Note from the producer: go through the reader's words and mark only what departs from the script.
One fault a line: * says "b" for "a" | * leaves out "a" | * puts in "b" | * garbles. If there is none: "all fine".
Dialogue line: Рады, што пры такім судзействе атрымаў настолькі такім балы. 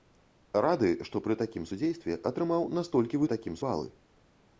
all fine